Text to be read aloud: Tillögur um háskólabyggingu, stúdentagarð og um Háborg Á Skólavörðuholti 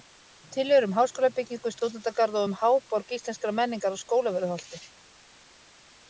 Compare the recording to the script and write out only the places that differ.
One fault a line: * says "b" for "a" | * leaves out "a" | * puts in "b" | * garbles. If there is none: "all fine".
* puts in "Íslenskrar menningar"